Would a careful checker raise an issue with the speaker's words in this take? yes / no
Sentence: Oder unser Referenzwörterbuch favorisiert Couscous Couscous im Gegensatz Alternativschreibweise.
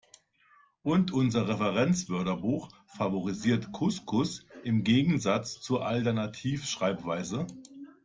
yes